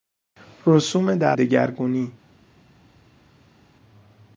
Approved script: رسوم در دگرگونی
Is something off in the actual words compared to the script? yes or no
no